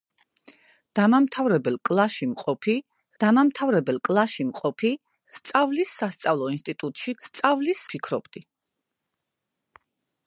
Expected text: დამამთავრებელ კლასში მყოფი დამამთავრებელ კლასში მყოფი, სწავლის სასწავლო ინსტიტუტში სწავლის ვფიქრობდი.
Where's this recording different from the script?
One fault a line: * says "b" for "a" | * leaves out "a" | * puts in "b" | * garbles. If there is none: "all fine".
all fine